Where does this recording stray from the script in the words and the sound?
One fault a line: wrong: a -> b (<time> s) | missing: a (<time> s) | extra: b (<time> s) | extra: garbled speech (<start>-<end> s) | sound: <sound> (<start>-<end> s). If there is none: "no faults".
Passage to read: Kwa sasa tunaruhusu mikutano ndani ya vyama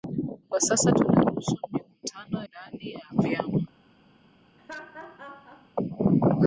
sound: laugh (4.6-5.7 s)